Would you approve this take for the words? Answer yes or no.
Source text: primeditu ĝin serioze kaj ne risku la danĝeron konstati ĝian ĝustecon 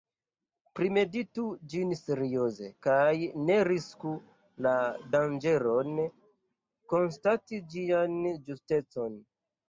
yes